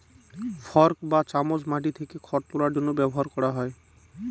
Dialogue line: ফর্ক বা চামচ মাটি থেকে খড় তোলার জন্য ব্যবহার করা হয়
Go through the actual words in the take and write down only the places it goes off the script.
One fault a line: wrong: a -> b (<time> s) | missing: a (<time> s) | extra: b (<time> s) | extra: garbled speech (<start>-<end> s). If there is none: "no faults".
no faults